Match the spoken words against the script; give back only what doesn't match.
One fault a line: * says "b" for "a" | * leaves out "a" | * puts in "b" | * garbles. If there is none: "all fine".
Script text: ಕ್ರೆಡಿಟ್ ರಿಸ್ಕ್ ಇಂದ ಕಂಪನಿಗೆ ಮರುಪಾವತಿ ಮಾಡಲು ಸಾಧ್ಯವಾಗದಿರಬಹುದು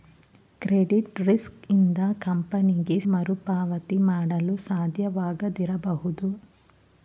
all fine